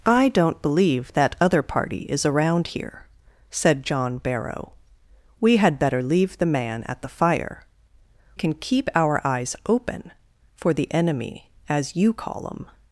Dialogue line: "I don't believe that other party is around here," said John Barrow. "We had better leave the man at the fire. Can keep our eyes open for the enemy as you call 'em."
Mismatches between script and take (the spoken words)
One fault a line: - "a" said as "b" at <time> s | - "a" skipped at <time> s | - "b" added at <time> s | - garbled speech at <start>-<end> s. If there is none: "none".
none